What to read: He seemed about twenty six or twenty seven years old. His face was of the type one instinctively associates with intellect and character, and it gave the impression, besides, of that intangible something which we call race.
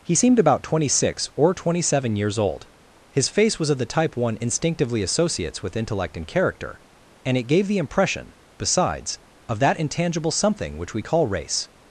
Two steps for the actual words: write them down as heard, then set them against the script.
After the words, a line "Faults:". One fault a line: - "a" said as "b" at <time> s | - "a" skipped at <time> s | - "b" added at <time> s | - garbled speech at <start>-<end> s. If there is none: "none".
He seemed about twenty six or twenty seven years old. His face was of the type one instinctively associates with intellect and character, and it gave the impression, besides, of that intangible something which we call race.
Faults:
none